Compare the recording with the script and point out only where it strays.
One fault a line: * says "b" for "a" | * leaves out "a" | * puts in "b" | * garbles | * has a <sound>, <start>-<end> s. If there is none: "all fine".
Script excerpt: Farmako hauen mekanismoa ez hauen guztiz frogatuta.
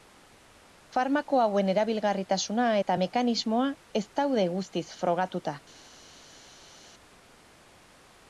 * puts in "erabilgarritasuna eta"
* says "daude" for "hauen"